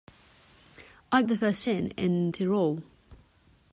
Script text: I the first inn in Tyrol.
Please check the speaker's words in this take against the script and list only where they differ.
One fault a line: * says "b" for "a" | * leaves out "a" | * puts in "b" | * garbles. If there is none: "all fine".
all fine